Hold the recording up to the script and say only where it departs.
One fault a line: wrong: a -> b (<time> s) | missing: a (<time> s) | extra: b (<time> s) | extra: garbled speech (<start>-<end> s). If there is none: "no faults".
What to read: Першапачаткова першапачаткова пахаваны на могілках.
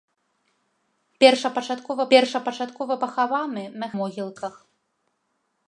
no faults